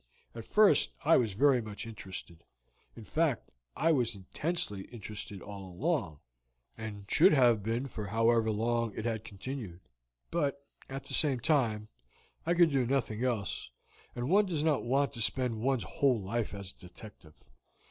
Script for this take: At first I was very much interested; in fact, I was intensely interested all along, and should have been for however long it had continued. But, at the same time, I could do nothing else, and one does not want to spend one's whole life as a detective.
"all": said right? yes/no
yes